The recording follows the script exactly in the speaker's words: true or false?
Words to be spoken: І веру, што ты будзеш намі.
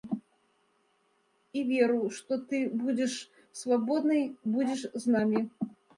false